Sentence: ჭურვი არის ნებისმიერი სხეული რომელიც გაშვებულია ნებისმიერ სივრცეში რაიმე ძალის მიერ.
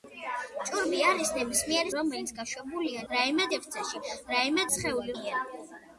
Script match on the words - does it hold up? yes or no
no